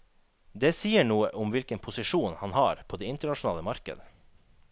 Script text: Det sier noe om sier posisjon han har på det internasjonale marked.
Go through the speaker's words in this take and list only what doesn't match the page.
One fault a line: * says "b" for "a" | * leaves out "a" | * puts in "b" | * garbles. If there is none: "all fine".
* says "hvilken" for "sier"